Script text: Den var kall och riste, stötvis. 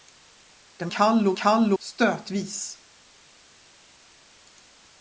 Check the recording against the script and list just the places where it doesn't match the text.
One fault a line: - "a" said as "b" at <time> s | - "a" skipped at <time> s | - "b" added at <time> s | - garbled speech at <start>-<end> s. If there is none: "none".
- "var" skipped at 0.9 s
- "riste" said as "kall" at 1.4 s